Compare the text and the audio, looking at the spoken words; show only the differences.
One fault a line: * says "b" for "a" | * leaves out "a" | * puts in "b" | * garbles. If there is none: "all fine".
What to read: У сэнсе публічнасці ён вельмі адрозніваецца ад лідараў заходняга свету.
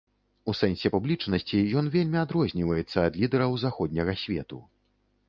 all fine